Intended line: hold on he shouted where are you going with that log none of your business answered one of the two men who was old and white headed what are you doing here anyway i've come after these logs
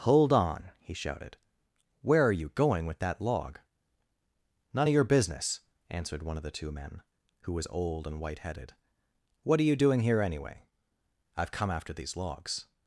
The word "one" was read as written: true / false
true